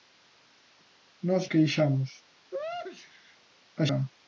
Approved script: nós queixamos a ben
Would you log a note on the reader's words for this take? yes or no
no